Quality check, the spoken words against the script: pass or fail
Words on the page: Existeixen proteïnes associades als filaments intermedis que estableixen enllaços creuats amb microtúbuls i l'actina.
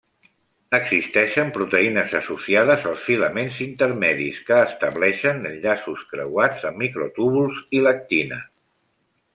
pass